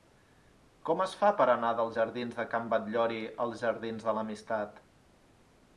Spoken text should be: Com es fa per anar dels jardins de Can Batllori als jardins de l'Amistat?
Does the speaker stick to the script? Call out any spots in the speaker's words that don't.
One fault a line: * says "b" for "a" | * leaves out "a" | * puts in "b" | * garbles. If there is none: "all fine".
all fine